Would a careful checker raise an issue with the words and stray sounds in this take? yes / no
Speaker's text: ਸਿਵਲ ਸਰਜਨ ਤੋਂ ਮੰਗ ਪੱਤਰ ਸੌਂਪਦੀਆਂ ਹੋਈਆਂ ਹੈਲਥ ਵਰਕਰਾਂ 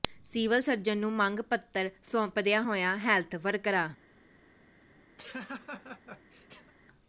yes